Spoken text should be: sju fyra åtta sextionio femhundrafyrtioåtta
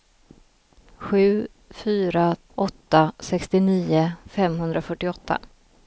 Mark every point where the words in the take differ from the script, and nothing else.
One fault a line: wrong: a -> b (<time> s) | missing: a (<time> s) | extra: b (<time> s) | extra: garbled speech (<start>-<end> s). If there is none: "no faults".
no faults